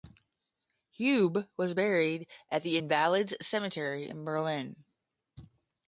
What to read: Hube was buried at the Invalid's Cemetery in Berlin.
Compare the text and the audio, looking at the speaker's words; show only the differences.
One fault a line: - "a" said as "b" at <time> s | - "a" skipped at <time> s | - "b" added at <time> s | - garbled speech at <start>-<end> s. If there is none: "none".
none